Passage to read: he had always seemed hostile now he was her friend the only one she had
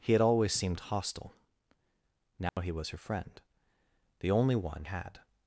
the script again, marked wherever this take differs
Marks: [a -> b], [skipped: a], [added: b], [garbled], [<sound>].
he had always seemed hostile now [dropout] he was her friend the only one [skipped: she] had